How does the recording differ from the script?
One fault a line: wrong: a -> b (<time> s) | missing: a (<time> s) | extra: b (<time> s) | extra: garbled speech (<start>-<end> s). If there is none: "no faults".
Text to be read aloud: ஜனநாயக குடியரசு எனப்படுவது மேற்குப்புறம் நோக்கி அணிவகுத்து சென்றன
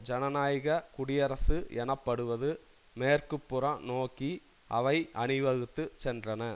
extra: அவை (4.7 s)